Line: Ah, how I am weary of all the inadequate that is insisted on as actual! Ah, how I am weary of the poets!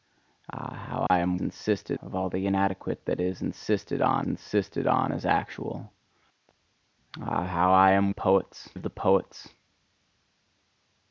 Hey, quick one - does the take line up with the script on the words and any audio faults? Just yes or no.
no